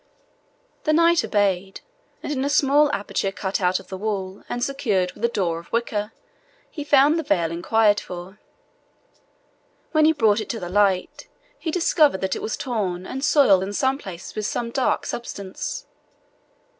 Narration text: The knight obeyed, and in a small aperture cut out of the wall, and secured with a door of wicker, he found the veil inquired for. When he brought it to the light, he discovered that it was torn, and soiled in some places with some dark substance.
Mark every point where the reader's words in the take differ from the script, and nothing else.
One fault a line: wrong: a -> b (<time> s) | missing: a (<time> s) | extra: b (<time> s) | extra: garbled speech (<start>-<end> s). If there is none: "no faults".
no faults